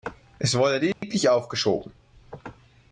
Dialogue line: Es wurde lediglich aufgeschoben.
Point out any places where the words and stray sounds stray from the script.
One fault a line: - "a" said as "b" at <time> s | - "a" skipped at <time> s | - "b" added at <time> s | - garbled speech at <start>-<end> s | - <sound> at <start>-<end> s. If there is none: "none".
- dropout at 0.9-1.0 s